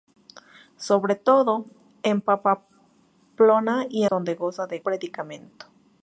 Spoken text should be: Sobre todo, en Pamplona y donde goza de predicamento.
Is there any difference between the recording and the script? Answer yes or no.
no